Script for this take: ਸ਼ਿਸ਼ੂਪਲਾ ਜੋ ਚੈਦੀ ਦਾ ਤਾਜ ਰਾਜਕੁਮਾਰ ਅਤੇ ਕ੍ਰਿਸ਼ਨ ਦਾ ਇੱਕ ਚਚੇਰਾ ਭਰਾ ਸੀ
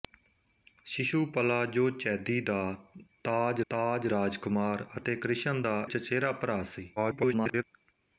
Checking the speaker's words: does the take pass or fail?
fail